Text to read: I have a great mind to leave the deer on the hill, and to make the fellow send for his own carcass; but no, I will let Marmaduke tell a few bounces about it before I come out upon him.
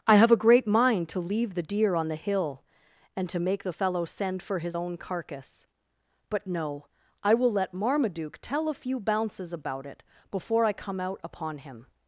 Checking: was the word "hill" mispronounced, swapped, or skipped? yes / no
no